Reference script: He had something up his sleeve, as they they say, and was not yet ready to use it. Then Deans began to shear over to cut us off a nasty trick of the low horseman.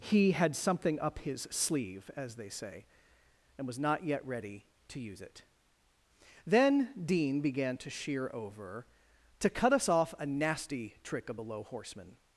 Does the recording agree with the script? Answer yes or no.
no